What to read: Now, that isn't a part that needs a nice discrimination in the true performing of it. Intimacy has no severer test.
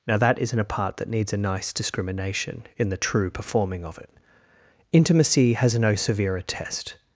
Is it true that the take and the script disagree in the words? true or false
false